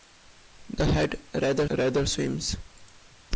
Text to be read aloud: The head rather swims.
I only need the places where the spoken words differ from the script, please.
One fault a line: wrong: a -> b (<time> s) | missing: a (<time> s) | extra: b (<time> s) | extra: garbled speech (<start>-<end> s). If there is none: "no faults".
extra: rather (1.7 s)